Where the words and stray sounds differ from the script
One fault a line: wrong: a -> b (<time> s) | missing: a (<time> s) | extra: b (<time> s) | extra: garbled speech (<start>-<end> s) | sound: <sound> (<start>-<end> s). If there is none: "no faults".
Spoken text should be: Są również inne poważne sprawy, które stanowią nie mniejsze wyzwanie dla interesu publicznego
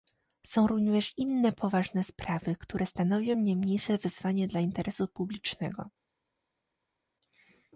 no faults